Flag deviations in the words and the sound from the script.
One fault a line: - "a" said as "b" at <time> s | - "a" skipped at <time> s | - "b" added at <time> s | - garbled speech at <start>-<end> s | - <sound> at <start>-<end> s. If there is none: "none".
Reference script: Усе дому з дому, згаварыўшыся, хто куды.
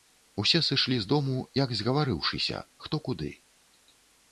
- "дому" said as "сышлі" at 0.7 s
- "як" added at 1.6 s